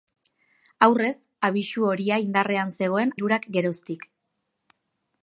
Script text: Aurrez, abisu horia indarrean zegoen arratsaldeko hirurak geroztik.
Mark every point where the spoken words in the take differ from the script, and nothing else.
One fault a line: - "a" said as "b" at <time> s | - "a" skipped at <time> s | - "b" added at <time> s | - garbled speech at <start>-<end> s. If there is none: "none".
- "arratsaldeko" skipped at 3.1 s